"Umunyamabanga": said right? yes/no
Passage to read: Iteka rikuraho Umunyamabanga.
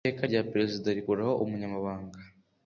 yes